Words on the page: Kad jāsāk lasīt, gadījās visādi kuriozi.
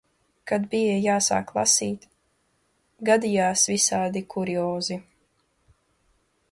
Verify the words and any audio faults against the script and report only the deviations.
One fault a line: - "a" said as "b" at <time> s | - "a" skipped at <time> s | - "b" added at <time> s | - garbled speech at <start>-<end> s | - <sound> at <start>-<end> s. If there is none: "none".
- "bija" added at 0.7 s